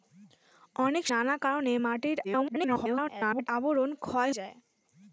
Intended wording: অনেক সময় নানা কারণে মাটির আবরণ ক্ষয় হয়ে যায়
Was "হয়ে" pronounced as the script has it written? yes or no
no